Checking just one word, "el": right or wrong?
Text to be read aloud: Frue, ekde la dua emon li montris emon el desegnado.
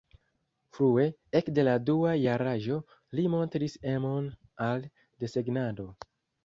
wrong